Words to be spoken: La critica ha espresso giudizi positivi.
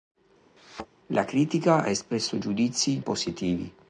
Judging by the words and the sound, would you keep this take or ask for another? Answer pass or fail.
fail